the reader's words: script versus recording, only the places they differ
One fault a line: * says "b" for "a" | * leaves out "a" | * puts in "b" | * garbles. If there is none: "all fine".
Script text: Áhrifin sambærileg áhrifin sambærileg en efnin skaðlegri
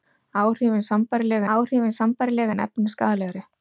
all fine